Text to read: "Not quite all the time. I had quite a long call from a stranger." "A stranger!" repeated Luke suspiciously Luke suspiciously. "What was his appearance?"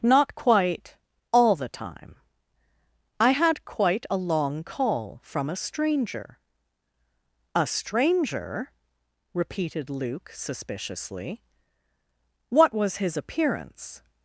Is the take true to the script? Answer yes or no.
no